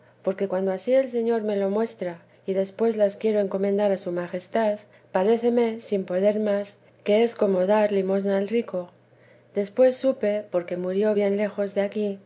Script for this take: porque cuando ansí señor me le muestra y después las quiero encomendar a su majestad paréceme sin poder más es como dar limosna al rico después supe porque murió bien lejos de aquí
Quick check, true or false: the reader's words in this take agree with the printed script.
false